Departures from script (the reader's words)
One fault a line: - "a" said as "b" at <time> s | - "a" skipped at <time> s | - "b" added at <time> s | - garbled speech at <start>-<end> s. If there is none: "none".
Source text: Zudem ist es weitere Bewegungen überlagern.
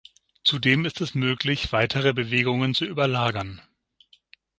- "möglich" added at 1.1 s
- "zu" added at 2.7 s